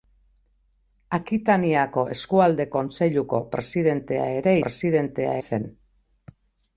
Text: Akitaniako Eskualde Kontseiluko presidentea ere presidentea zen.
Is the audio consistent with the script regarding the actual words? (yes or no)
yes